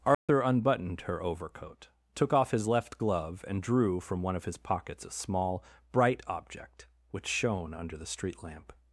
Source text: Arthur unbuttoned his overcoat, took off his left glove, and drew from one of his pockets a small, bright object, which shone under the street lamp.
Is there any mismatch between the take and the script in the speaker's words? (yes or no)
yes